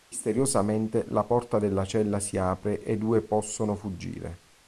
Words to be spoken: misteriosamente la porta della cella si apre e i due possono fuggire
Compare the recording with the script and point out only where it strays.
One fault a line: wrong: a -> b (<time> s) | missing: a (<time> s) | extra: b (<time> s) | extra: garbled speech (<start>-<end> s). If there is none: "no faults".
no faults